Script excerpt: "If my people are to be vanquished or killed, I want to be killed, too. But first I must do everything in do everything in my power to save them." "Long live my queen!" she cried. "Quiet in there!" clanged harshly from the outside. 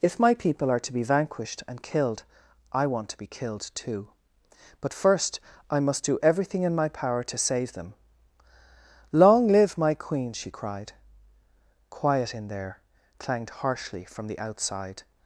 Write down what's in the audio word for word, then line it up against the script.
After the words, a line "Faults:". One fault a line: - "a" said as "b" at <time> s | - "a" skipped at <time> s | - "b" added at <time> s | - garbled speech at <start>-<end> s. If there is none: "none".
"If my people are to be vanquished and killed, I want to be killed, too. But first I must do everything in my power to save them." "Long live my queen!" she cried. "Quiet in there!" clanged harshly from the outside.
Faults:
- "or" said as "and" at 1.7 s
- "do everything in" skipped at 6.8 s